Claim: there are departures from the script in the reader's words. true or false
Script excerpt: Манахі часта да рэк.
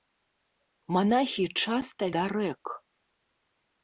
false